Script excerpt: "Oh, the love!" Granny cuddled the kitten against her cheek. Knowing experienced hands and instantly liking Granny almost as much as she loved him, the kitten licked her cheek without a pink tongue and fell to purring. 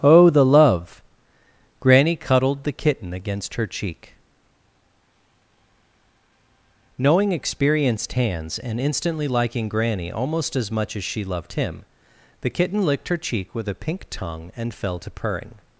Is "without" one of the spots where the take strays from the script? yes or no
yes